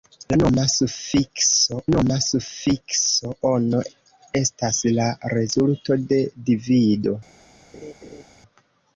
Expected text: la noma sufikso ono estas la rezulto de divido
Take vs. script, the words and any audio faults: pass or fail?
fail